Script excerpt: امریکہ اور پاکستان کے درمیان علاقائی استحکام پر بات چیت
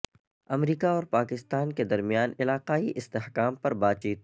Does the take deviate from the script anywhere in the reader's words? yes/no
no